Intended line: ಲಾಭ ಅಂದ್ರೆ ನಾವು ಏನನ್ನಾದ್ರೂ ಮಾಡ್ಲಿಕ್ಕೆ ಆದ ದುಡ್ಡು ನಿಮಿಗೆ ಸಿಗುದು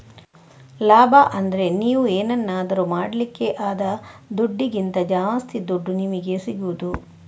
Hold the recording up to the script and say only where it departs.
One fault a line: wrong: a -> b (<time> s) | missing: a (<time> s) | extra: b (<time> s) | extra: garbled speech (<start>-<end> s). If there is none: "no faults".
wrong: ನಾವು -> ನೀವು (1.8 s)
extra: ದುಡ್ಡಿಗಿಂತ ಜಾಸ್ತಿ (4.4 s)